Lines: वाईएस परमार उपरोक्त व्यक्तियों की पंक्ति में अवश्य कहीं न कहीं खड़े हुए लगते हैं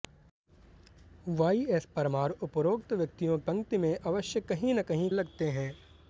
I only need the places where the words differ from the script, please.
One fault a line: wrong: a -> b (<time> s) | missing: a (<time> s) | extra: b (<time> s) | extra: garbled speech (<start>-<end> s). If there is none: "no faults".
missing: की (3.4 s)
missing: खड़े हुए (5.1 s)